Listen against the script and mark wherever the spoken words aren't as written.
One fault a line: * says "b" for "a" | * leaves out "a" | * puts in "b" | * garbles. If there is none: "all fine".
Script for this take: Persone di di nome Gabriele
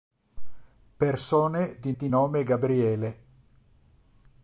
all fine